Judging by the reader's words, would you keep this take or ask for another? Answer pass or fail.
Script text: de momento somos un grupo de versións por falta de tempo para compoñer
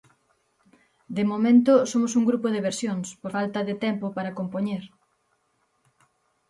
pass